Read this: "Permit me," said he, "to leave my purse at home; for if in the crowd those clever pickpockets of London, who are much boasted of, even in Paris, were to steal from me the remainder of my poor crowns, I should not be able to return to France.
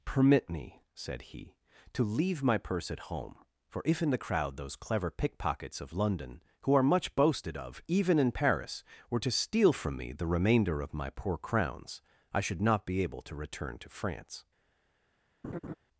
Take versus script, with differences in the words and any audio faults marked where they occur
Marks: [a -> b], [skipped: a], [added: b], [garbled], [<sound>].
"Permit me," said he, "to leave my purse at home; for if in the crowd those clever pickpockets of London, who are much boasted of, even in Paris, were to steal from me the remainder of my poor crowns, I should not be able to return to France. [laugh]